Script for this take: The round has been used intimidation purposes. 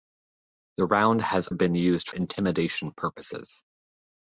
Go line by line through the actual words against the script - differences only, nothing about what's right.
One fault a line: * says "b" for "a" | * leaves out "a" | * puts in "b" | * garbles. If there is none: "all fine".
all fine